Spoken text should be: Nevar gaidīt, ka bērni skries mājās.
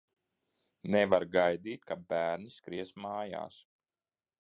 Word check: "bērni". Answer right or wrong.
right